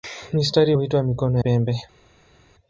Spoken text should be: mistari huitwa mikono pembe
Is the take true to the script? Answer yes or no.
yes